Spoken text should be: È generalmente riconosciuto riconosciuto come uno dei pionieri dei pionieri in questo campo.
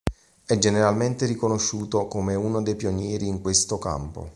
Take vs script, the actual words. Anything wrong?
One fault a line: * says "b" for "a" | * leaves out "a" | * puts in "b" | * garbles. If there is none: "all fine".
* leaves out "riconosciuto"
* leaves out "dei pionieri"